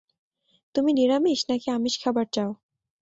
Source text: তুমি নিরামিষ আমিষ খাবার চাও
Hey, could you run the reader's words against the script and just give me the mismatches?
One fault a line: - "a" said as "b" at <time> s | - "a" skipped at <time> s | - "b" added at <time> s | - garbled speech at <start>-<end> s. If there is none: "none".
- "নাকি" added at 1.5 s